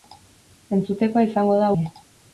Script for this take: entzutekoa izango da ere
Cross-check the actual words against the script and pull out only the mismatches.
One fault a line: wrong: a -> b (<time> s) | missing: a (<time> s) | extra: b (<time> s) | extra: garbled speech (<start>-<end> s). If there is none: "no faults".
no faults